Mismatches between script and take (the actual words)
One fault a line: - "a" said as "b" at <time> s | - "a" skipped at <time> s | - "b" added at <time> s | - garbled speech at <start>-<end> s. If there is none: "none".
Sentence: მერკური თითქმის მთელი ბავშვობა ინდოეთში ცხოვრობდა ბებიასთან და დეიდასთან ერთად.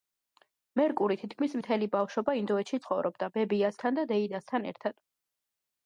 none